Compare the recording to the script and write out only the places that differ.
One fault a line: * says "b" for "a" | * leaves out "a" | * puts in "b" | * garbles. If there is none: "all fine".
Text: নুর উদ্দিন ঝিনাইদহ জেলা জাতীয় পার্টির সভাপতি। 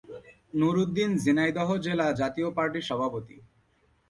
all fine